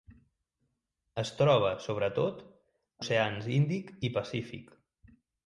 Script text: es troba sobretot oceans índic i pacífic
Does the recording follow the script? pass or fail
pass